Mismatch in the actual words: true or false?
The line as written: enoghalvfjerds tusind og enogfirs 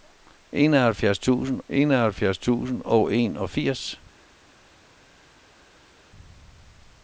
true